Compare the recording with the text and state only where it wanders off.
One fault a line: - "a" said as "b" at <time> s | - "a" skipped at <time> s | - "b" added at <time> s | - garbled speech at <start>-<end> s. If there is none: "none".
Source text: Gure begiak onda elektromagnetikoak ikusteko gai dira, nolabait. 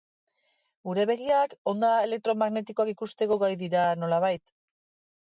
none